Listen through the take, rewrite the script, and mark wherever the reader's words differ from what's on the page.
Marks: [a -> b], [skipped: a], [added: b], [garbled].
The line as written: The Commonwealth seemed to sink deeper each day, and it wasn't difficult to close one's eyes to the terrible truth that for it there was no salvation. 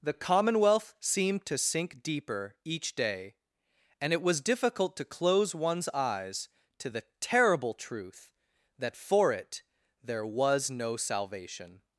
The Commonwealth seemed to sink deeper each day, and it [wasn't -> was] difficult to close one's eyes to the terrible truth that for it there was no salvation.